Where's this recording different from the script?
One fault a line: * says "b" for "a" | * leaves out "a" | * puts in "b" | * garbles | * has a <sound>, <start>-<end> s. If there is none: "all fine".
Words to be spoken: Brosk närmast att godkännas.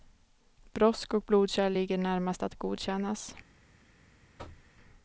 * puts in "och blodkärl ligger"
* has a thud, 4.4-4.7 s